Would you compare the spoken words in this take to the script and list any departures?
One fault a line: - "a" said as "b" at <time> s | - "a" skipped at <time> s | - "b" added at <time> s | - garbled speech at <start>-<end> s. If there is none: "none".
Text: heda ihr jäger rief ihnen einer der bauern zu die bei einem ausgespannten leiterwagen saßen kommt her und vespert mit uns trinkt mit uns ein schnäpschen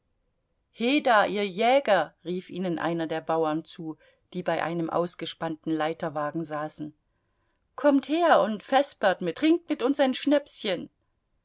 - "uns" skipped at 9.4 s